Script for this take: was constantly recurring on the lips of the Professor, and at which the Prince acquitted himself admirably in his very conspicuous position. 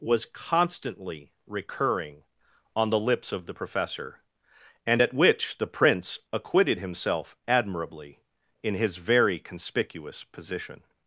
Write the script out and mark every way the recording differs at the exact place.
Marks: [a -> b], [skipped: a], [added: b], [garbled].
was constantly recurring on the lips of the Professor, and at which the Prince acquitted himself admirably in his very conspicuous position.